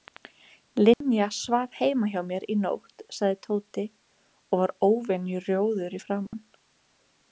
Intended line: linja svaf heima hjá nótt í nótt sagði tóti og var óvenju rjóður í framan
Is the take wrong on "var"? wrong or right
right